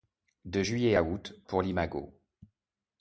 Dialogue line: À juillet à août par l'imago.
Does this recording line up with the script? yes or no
no